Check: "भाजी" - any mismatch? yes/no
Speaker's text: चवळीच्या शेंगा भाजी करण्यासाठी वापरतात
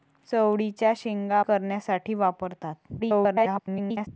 yes